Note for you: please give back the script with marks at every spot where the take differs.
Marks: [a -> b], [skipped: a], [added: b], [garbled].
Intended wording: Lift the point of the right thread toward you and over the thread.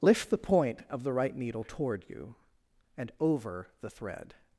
Lift the point of the right [thread -> needle] toward you and over the thread.